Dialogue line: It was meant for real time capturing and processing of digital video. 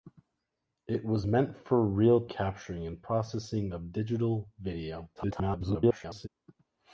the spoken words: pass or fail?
fail